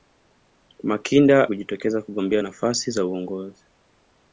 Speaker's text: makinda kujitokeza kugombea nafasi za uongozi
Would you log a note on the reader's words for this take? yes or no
no